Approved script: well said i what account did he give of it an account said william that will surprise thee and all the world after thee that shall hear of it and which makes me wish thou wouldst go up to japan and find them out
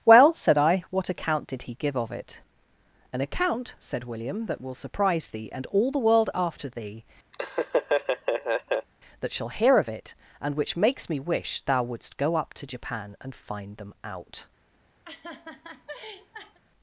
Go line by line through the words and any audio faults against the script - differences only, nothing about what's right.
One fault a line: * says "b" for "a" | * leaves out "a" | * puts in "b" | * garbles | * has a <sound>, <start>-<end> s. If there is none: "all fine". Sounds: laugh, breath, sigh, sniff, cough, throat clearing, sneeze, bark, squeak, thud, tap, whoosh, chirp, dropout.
* has a laugh, 7.3-8.9 s
* has a laugh, 15.0-16.6 s